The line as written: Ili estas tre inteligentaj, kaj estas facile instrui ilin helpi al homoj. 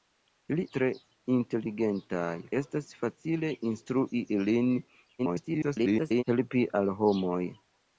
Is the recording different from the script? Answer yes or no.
yes